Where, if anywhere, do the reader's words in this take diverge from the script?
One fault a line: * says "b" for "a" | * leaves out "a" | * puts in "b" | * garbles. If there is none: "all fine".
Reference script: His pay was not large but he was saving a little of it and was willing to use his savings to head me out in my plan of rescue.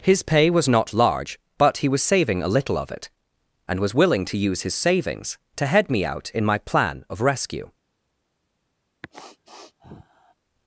all fine